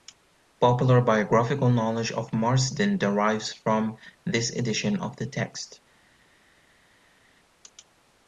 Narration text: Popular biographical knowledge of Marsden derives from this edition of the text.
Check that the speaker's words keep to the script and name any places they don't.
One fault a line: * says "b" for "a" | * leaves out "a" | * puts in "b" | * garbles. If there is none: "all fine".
all fine